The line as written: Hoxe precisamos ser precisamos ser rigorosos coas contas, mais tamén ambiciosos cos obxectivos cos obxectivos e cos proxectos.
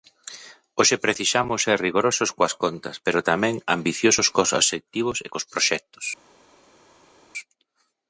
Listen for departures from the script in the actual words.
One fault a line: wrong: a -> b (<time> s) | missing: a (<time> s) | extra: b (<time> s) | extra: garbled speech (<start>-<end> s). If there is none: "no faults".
missing: precisamos ser (1.8 s)
wrong: mais -> pero (3.1 s)
missing: cos obxectivos (5.2 s)